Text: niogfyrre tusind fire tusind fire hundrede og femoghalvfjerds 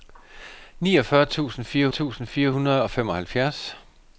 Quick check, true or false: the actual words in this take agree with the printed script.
true